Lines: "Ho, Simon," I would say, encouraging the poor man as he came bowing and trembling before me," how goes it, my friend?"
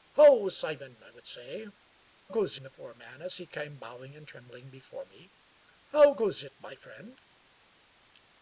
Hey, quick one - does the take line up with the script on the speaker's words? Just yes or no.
no